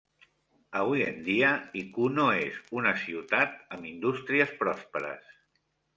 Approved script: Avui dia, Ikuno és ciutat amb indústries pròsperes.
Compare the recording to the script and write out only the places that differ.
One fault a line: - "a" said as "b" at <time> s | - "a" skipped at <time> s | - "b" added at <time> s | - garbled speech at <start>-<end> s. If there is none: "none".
- "en" added at 1.1 s
- "una" added at 2.8 s